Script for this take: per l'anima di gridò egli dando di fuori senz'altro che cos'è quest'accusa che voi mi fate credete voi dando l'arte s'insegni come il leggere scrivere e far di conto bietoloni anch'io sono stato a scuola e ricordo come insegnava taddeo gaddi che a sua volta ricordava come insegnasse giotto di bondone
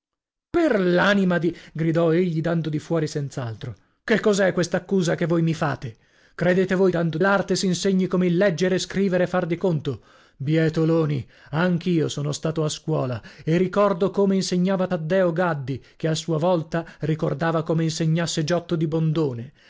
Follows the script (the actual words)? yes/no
yes